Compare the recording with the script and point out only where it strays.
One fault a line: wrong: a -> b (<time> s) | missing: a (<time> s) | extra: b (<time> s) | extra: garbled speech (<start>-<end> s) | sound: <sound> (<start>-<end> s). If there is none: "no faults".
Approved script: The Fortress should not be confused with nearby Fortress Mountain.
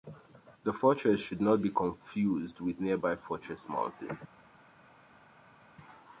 no faults